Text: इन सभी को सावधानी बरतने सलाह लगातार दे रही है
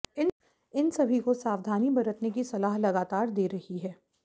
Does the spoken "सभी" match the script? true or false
true